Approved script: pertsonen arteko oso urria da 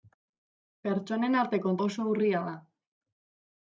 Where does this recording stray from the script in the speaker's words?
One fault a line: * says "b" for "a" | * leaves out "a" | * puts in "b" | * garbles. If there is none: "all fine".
all fine